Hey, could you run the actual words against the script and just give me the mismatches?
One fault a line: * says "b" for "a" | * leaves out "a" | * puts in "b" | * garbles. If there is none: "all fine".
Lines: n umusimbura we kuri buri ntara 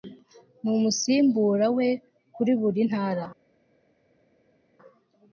all fine